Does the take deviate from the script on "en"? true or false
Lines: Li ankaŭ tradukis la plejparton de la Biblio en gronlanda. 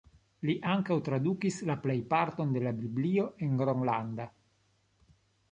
false